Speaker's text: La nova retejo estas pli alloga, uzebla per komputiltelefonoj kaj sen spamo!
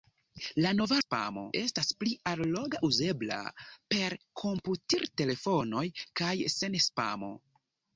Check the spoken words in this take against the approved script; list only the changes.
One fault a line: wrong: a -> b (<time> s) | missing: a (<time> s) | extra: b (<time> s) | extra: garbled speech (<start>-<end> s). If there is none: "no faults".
wrong: retejo -> spamo (1.0 s)